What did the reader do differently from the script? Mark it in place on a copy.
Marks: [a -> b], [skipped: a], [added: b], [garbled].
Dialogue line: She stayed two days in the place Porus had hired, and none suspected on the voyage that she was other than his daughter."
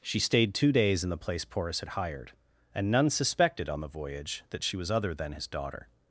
She stayed two days in the place Porus had hired, and none suspected on the voyage that she was other than his daughter."